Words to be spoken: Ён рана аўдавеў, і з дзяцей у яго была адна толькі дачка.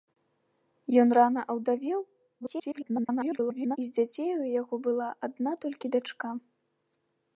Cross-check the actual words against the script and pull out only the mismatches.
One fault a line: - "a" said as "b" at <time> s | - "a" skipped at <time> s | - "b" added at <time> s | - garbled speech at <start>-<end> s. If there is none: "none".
- garbled speech at 2.4-3.8 s